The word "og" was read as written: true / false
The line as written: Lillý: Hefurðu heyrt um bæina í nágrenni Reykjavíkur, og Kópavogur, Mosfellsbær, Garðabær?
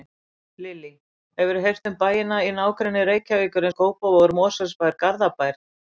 true